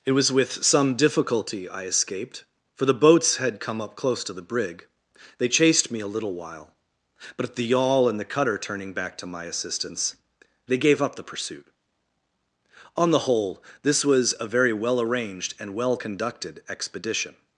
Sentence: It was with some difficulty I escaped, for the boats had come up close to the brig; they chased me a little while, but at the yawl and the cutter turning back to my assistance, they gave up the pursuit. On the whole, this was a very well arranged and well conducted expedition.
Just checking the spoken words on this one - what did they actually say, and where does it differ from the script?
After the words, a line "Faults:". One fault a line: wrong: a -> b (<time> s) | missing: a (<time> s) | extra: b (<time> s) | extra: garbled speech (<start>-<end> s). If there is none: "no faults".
It was with some difficulty I escaped, for the boats had come up close to the brig; they chased me a little while, but at the yawl and the cutter turning back to my assistance, they gave up the pursuit. On the whole, this was a very well arranged and well conducted expedition.
Faults:
no faults